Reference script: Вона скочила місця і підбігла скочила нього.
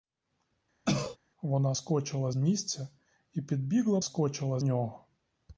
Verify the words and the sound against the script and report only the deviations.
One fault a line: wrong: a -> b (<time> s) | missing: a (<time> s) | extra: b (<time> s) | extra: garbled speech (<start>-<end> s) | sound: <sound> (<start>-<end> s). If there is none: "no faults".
sound: cough (0.8-1.2 s)